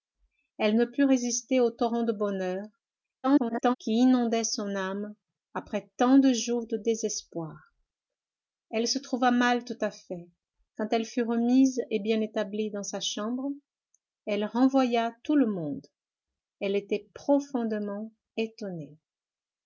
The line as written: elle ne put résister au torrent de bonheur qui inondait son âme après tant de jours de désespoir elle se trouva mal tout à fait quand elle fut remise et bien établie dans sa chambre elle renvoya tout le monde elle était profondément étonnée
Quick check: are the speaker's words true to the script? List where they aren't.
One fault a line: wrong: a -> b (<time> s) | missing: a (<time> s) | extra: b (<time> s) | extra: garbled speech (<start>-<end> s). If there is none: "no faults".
extra: garbled speech (3.2-3.8 s)